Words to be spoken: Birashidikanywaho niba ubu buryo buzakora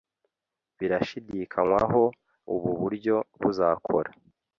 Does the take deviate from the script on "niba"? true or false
true